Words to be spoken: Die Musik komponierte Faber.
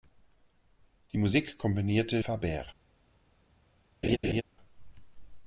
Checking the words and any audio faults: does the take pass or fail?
fail